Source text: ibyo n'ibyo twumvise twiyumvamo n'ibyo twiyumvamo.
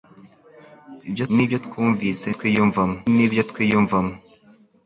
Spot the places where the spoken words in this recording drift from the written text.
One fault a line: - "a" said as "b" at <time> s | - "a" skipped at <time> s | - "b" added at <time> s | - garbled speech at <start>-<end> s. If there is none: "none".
none